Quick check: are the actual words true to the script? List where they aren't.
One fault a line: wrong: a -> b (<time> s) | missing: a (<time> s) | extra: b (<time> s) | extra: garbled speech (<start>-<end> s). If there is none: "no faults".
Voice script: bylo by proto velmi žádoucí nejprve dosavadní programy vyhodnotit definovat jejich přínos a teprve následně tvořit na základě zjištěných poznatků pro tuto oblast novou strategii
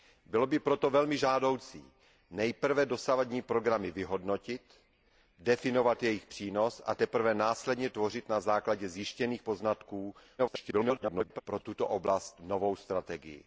extra: garbled speech (10.4-11.4 s)